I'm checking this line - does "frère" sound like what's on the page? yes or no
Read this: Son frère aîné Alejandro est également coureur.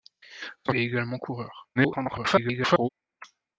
no